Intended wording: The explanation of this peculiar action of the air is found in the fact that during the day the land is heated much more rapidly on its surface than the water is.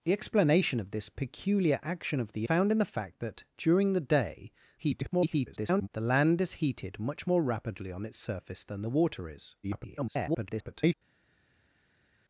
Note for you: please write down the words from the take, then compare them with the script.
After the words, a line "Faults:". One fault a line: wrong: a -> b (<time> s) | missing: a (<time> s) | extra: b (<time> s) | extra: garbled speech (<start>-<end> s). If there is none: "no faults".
The explanation of this peculiar action of the found in the fact that during the day [garbled] the land is heated much more rapidly on its surface than the water is. [garbled]
Faults:
missing: air is (2.5 s)
extra: garbled speech (4.8-5.9 s)
extra: garbled speech (9.6-10.9 s)